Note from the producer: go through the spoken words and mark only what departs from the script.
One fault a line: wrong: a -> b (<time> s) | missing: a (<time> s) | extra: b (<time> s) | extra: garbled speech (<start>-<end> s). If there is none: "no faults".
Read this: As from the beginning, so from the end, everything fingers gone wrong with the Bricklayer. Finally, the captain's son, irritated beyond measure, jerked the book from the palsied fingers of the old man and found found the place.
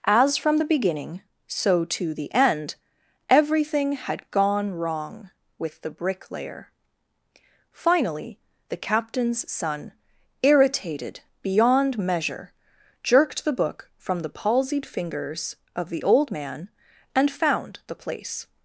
wrong: from -> to (1.8 s)
wrong: fingers -> had (3.9 s)
missing: found (17.8 s)